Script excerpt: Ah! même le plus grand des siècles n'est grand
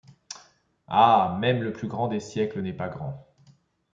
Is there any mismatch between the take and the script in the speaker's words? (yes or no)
yes